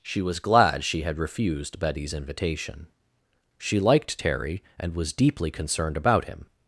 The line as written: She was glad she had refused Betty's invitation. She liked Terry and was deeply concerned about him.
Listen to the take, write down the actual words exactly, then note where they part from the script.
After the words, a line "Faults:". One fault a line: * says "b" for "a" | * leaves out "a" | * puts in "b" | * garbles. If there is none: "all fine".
She was glad she had refused Betty's invitation. She liked Terry and was deeply concerned about him.
Faults:
all fine